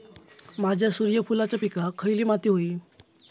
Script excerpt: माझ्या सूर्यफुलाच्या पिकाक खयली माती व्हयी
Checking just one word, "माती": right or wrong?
right